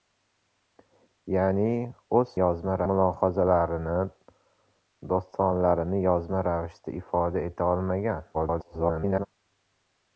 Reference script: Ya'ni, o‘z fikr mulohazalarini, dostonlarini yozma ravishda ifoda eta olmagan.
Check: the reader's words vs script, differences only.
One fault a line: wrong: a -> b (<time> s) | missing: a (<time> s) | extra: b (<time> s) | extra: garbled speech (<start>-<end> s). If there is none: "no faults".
wrong: fikr -> yozma (2.4 s)
extra: garbled speech (8.3-9.3 s)